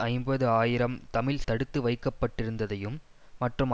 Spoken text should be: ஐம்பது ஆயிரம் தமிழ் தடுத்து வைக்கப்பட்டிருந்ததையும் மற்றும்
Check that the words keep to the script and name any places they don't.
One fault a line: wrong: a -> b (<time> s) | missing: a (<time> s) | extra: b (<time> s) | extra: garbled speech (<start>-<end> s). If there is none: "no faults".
no faults